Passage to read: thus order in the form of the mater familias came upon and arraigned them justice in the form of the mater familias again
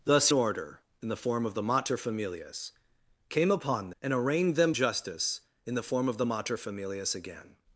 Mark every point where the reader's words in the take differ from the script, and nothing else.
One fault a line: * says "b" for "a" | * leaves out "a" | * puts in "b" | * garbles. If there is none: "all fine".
all fine